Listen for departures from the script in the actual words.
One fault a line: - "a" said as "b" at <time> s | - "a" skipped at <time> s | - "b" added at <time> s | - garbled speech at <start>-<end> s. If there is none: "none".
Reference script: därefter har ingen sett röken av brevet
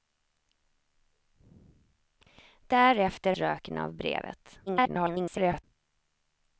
- "har ingen sett" skipped at 3.3 s
- garbled speech at 4.7-5.6 s